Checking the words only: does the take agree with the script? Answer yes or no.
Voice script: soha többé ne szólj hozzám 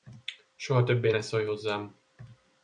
yes